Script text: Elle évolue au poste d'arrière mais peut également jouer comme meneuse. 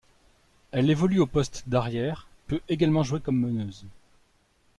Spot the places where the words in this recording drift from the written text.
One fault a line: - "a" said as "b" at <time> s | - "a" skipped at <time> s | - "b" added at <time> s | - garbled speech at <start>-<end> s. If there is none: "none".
- "mais" skipped at 2.3 s